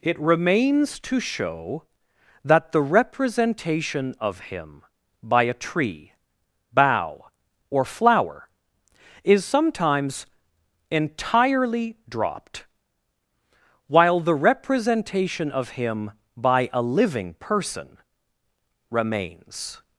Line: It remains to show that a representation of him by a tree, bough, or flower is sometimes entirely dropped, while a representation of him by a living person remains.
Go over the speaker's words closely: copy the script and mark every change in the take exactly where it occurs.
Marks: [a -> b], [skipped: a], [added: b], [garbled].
It remains to show that [a -> the] representation of him by a tree, bough, or flower is sometimes entirely dropped, while [a -> the] representation of him by a living person remains.